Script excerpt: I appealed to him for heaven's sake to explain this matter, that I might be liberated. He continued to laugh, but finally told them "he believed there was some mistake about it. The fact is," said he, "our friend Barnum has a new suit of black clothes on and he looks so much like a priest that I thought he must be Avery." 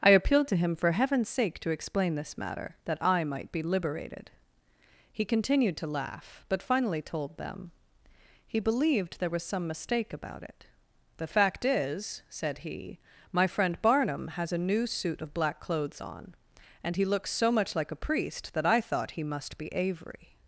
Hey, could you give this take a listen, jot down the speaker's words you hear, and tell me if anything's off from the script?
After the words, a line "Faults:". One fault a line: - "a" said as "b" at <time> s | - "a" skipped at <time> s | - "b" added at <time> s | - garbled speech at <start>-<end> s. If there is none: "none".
I appealed to him for heaven's sake to explain this matter, that I might be liberated. He continued to laugh, but finally told them "he believed there was some mistake about it. The fact is," said he, "my friend Barnum has a new suit of black clothes on and he looks so much like a priest that I thought he must be Avery."
Faults:
- "our" said as "my" at 13.3 s